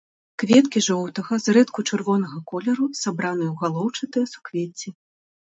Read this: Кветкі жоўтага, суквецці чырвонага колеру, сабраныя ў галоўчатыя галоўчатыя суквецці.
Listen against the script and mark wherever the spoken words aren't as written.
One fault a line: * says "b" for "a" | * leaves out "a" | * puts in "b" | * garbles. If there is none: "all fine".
* says "зрэдку" for "суквецці"
* leaves out "галоўчатыя"